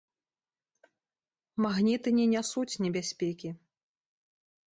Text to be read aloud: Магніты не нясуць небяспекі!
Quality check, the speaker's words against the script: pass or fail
pass